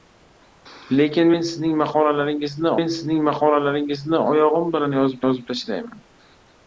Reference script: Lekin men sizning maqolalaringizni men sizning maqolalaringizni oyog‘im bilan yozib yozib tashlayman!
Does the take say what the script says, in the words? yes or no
yes